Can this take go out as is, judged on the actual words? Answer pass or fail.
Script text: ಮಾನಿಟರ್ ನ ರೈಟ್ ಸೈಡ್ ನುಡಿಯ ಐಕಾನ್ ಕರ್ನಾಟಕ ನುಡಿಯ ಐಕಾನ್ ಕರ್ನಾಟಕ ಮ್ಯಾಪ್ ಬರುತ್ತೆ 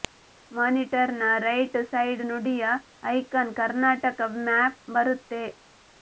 fail